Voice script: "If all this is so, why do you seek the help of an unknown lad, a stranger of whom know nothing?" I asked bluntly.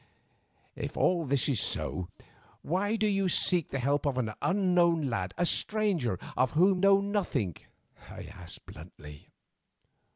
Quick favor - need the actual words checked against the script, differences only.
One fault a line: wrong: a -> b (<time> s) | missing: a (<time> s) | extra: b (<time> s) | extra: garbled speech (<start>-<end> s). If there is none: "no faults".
no faults